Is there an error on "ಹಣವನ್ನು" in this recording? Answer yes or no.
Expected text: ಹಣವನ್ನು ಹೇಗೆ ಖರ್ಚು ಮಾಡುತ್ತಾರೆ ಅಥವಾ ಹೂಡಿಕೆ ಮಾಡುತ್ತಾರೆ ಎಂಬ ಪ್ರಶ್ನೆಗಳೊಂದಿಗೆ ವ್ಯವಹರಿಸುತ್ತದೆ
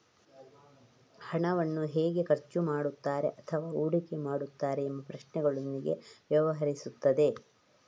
no